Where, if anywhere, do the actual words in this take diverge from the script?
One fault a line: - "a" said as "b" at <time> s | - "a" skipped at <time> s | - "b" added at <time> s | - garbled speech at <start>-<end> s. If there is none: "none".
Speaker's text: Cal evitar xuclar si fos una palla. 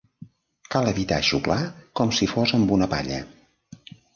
- "com" added at 2.0 s
- "amb" added at 2.6 s